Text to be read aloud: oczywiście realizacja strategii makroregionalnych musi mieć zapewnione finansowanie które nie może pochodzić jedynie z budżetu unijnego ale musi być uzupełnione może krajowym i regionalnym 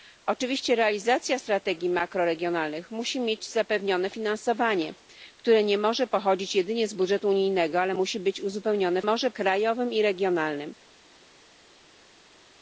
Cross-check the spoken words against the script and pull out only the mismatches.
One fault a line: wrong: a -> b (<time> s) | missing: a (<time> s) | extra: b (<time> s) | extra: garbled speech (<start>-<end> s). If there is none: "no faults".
no faults